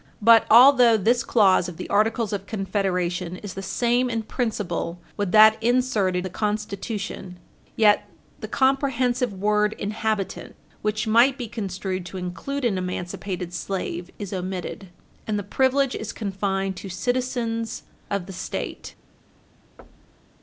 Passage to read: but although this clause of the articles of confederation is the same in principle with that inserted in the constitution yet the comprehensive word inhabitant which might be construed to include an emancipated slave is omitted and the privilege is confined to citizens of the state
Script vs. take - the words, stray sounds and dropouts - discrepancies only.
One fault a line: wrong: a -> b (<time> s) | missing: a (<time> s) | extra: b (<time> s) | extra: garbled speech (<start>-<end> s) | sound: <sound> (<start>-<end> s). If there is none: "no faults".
missing: in (6.2 s)
sound: thud (19.8-20.4 s)